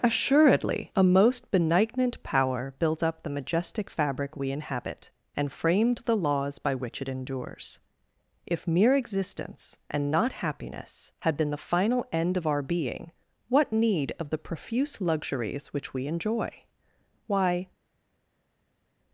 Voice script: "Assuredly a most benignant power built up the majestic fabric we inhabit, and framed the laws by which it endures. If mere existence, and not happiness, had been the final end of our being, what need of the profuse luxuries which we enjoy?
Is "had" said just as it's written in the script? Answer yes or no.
yes